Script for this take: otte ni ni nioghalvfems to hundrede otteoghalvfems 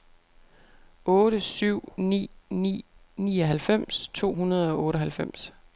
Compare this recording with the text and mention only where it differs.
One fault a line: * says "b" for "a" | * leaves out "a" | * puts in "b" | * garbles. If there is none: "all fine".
* puts in "syv"
* puts in "og"